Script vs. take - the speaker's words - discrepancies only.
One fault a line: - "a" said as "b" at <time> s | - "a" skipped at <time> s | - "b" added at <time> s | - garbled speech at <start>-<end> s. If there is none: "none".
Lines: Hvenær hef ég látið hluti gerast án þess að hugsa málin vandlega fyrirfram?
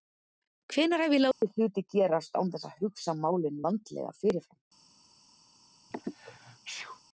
none